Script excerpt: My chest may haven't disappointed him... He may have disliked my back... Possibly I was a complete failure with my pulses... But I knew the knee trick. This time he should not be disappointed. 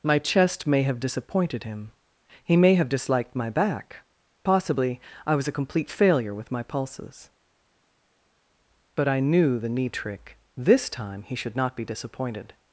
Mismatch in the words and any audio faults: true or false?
true